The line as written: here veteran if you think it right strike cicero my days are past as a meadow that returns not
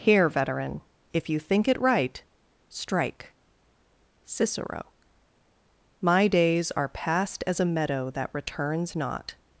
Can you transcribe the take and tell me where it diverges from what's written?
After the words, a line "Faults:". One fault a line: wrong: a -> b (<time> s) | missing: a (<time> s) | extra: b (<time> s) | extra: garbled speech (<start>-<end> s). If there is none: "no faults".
here veteran if you think it right strike cicero my days are past as a meadow that returns not
Faults:
no faults